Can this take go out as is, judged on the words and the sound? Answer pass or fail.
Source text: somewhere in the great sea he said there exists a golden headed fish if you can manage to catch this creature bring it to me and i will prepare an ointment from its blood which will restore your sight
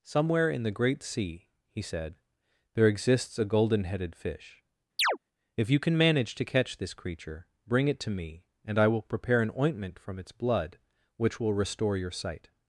fail